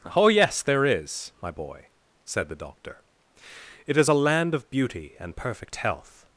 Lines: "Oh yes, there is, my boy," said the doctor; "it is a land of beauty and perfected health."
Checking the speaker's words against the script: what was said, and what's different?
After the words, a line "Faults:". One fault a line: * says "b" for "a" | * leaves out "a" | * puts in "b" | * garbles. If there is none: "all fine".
"Oh yes, there is, my boy," said the doctor; "it is a land of beauty and perfect health."
Faults:
* says "perfect" for "perfected"